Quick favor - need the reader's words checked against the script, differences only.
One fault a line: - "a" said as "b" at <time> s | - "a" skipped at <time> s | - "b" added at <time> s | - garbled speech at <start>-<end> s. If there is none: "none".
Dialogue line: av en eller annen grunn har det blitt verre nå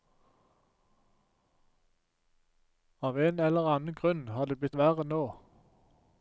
none